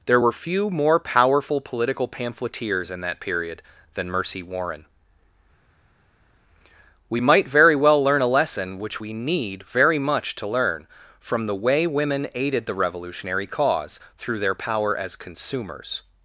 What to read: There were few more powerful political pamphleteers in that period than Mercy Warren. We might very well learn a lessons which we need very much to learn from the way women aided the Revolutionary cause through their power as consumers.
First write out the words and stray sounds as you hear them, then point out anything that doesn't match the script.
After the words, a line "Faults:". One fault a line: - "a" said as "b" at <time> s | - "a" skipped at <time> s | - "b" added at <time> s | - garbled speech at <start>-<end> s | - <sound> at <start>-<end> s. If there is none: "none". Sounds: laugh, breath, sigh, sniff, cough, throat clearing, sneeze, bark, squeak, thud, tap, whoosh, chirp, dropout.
There were few more powerful political pamphleteers in that period than Mercy Warren. We might very well learn a lesson which we need very much to learn from the way women aided the Revolutionary cause through their power as consumers.
Faults:
- "lessons" said as "lesson" at 8.3 s